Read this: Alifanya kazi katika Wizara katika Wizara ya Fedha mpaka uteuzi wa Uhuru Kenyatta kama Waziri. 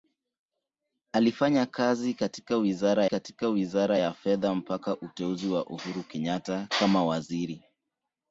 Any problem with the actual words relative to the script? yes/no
no